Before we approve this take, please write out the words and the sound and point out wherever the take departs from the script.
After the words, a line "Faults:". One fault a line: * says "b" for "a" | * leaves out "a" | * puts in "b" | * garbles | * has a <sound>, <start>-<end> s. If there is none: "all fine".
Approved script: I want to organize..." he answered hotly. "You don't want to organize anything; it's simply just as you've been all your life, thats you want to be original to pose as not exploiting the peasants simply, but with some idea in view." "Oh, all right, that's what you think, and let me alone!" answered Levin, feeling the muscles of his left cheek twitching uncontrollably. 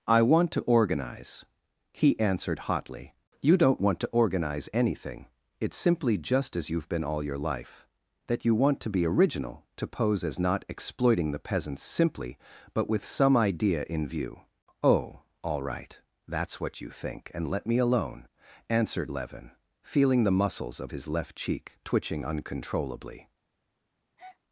I want to organize..." he answered hotly. "You don't want to organize anything; it's simply just as you've been all your life, that you want to be original to pose as not exploiting the peasants simply, but with some idea in view." "Oh, all right, that's what you think, and let me alone!" answered Levin, feeling the muscles of his left cheek twitching uncontrollably.
Faults:
* says "that" for "thats"
* has a breath, 24.2-24.4 s